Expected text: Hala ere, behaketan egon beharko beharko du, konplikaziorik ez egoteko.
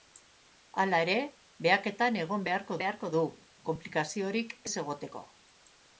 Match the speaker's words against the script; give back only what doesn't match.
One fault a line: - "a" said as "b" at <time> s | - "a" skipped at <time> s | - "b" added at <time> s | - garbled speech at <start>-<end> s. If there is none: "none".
none